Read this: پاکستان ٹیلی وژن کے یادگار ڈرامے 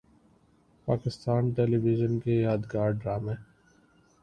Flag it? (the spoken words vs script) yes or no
no